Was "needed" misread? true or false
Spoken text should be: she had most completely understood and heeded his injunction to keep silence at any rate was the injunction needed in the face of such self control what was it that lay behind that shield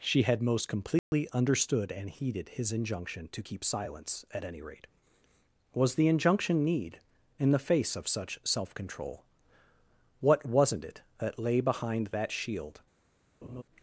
true